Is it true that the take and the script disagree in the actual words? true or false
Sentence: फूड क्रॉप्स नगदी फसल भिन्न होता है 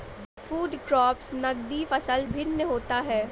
false